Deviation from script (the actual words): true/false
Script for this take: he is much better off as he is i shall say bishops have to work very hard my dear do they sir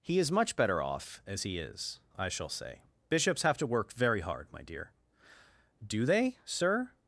false